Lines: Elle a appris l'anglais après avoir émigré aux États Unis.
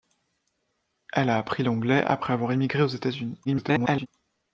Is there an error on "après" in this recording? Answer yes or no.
no